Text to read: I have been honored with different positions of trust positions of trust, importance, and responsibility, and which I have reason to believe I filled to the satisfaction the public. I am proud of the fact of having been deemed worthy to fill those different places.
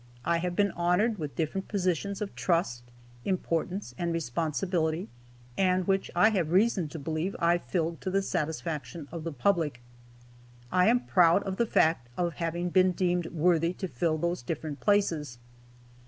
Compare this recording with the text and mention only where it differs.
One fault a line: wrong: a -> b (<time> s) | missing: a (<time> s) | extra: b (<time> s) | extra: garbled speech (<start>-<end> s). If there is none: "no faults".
missing: positions of trust (2.8 s)
extra: of (9.1 s)